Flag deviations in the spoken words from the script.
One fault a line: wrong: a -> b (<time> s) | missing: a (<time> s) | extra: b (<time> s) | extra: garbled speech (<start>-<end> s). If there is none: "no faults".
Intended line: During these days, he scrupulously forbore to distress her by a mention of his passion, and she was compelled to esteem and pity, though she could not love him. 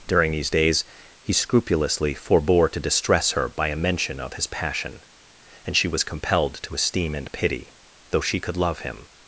missing: not (8.6 s)